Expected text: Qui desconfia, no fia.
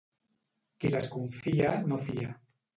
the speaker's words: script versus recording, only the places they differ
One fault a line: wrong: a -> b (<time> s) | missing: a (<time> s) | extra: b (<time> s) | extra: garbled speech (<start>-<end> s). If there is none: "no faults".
no faults